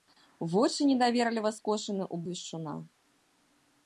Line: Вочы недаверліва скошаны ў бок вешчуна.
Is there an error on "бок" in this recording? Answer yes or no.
yes